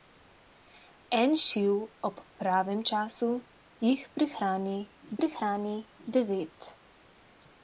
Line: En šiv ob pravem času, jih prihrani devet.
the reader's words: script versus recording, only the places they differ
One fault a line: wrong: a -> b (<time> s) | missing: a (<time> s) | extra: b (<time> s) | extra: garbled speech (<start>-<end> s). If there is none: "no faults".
extra: prihrani (5.2 s)